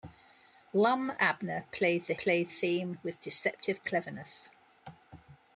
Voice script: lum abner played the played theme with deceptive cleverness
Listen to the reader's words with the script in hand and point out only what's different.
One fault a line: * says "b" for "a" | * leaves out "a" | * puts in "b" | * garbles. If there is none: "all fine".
all fine